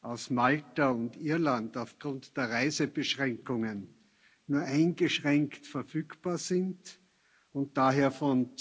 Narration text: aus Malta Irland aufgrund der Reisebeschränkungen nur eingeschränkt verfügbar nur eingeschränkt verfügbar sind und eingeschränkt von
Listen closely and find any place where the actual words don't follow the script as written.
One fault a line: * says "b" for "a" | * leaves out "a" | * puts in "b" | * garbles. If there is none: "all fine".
* puts in "und"
* leaves out "nur eingeschränkt verfügbar"
* says "daher" for "eingeschränkt"